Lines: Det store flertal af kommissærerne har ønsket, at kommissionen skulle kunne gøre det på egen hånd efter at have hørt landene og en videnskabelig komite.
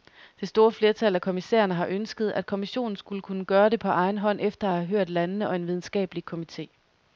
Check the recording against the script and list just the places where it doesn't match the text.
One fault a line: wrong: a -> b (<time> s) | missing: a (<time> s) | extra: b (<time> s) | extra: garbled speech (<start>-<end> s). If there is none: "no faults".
no faults